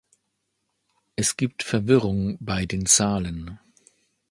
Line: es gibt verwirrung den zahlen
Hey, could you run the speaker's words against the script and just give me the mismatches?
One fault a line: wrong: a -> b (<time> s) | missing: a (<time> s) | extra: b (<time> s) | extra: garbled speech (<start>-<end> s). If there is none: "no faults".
extra: bei (2.4 s)